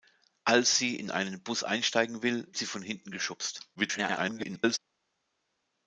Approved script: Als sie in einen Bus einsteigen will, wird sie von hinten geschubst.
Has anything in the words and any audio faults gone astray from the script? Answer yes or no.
yes